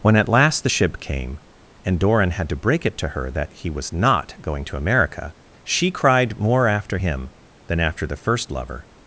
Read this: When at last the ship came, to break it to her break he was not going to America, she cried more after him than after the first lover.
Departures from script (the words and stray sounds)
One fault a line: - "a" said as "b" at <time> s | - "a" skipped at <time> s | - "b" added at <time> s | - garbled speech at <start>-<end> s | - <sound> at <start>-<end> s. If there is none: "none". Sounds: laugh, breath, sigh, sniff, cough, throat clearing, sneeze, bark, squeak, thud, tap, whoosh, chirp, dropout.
- "and Doran had" added at 1.8 s
- "break" said as "that" at 3.3 s